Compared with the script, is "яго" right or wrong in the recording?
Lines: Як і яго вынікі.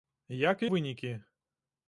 wrong